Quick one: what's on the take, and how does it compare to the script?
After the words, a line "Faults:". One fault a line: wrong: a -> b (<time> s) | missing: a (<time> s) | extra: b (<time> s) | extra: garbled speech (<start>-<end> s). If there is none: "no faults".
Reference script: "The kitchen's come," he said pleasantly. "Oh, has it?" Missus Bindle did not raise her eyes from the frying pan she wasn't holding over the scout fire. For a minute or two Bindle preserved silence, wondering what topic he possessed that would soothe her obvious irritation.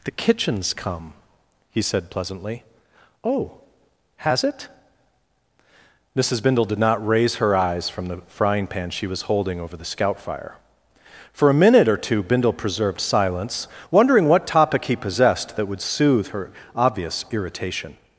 "The kitchen's come," he said pleasantly. "Oh, has it?" Missus Bindle did not raise her eyes from the frying pan she was holding over the scout fire. For a minute or two Bindle preserved silence, wondering what topic he possessed that would soothe her obvious irritation.
Faults:
wrong: wasn't -> was (9.1 s)